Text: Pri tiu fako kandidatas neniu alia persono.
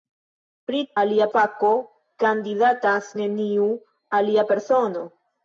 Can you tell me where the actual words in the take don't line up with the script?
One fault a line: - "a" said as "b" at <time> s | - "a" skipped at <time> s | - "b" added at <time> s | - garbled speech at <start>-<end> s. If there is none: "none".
- "tiu" said as "alia" at 1.0 s